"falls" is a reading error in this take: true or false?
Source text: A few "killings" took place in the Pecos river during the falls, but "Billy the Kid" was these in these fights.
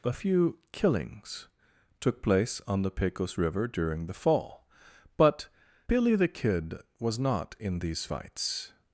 true